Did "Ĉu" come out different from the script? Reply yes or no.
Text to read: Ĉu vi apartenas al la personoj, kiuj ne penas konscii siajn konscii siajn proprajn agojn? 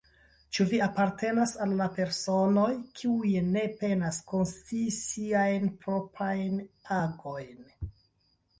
no